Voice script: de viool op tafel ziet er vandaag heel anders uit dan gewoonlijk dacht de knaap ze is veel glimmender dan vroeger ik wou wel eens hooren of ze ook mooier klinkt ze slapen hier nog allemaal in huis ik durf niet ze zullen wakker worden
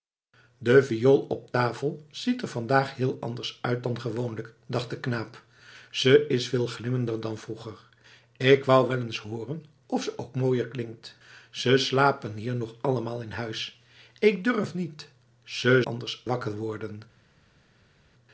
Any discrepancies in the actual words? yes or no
yes